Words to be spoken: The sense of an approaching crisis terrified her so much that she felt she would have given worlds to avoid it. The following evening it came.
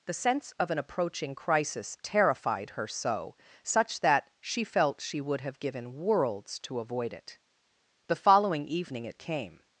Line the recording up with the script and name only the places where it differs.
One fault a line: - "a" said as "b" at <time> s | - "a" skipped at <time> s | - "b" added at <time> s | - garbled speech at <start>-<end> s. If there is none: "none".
- "much" said as "such" at 3.6 s